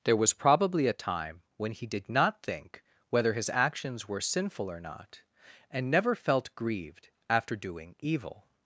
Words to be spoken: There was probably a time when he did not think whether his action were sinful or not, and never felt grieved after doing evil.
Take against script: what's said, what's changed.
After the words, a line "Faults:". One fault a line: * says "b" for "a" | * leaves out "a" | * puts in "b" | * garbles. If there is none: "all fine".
There was probably a time when he did not think whether his actions were sinful or not, and never felt grieved after doing evil.
Faults:
* says "actions" for "action"